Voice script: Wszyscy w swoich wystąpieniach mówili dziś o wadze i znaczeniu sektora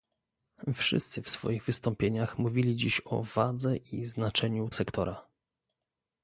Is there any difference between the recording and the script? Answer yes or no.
no